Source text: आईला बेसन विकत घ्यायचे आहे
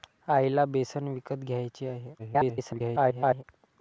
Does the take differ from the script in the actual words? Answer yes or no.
yes